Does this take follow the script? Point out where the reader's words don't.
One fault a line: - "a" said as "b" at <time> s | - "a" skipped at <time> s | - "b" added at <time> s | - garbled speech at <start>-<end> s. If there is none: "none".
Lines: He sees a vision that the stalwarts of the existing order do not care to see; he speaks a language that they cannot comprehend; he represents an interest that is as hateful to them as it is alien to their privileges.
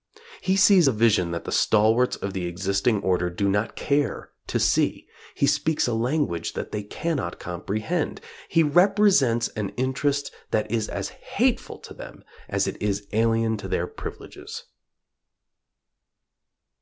none